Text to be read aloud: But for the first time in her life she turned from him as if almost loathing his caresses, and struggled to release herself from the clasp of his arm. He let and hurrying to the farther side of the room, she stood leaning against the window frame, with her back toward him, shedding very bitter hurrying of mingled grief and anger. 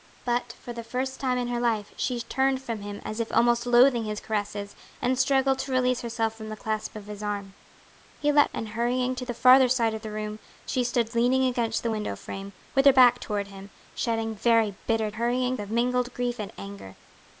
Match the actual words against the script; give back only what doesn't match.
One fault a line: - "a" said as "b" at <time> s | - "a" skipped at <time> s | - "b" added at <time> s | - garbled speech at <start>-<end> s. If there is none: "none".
none